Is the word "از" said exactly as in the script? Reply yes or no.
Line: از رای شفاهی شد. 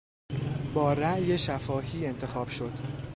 no